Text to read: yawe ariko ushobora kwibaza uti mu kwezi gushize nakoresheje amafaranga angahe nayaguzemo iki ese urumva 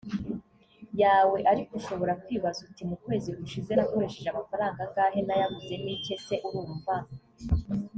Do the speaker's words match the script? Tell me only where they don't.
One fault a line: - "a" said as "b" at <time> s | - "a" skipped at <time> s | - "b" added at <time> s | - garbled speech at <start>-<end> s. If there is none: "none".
none